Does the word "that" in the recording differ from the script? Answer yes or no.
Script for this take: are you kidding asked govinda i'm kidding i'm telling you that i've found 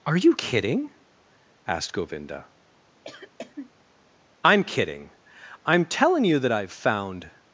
no